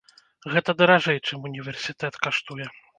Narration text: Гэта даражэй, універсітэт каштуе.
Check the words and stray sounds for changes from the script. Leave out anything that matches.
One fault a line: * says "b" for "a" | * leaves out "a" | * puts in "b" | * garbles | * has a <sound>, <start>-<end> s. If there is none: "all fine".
* puts in "чым"